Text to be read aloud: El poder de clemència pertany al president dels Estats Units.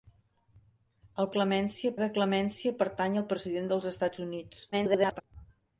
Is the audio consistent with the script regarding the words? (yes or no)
no